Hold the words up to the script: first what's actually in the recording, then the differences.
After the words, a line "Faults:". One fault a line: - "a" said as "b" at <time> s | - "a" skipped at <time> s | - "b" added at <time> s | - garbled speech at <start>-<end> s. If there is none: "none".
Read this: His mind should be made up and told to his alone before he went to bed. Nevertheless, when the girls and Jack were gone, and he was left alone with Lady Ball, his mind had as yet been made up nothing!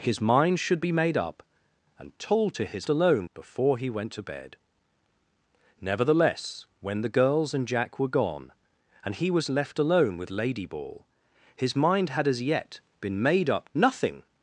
His mind should be made up and told to his alone before he went to bed. Nevertheless, when the girls and Jack were gone, and he was left alone with Lady Ball, his mind had as yet been made up nothing!
Faults:
none